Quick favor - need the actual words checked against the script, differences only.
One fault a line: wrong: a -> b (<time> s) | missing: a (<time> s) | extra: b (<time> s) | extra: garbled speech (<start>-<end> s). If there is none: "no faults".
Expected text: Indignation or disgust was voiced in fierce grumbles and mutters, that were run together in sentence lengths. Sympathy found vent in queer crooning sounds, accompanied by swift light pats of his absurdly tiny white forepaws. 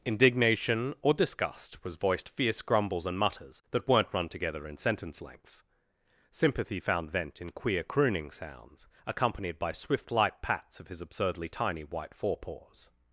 missing: in (2.3 s)
wrong: were -> weren't (3.9 s)